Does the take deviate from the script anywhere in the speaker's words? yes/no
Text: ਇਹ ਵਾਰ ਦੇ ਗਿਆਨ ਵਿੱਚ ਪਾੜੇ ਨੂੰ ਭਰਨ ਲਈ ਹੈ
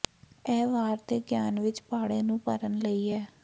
no